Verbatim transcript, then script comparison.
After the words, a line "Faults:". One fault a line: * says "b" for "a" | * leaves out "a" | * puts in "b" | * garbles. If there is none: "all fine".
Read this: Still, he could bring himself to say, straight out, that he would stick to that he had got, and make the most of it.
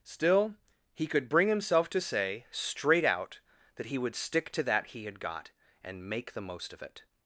Still, he could bring himself to say, straight out, that he would stick to that he had got, and make the most of it.
Faults:
all fine